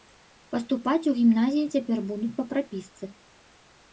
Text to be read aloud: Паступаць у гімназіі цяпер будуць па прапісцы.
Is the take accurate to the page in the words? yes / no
yes